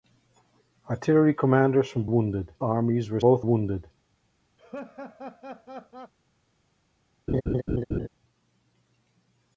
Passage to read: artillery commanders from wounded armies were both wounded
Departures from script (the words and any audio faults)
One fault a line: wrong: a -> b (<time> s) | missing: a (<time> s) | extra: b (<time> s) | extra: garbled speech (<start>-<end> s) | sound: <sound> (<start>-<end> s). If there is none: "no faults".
sound: laugh (4.6-6.1 s)
sound: laugh (7.3-8.1 s)